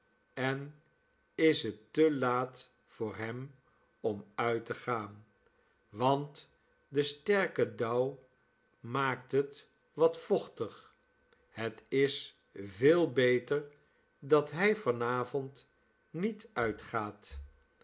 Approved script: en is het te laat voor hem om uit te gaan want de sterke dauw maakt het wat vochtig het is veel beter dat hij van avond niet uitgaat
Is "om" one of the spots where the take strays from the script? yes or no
no